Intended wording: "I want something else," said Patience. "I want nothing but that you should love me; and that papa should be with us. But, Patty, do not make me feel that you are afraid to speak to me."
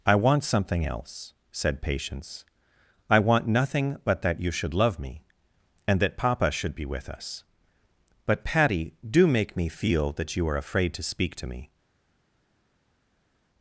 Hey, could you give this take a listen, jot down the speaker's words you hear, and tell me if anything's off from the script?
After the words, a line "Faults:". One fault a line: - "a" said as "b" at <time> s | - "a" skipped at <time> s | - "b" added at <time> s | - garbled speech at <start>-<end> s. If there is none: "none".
"I want something else," said Patience. "I want nothing but that you should love me; and that papa should be with us. But, Patty, do make me feel that you are afraid to speak to me."
Faults:
- "not" skipped at 9.3 s